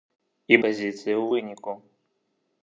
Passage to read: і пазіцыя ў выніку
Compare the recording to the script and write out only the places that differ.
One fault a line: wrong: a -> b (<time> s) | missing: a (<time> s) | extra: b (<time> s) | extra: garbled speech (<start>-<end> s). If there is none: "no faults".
no faults